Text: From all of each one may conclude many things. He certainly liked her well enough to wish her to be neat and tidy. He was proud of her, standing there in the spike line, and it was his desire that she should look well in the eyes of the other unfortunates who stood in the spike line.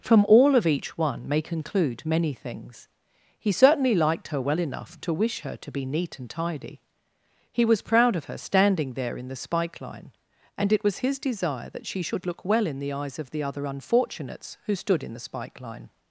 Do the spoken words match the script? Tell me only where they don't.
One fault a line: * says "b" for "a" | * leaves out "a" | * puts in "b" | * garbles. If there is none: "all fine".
all fine